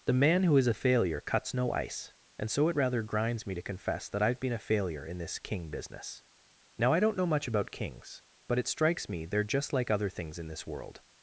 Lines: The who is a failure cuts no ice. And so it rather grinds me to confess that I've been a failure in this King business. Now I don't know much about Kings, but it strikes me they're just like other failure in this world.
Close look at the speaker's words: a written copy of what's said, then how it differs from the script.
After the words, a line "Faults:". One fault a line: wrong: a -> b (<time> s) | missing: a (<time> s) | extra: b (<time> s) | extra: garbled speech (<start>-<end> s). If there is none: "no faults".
The man who is a failure cuts no ice. And so it rather grinds me to confess that I've been a failure in this King business. Now I don't know much about Kings, but it strikes me they're just like other things in this world.
Faults:
extra: man (0.1 s)
wrong: failure -> things (10.1 s)